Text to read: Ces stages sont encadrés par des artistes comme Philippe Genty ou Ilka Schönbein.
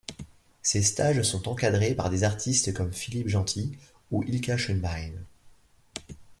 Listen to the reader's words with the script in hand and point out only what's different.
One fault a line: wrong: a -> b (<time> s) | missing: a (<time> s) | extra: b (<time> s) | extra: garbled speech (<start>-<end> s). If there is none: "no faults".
no faults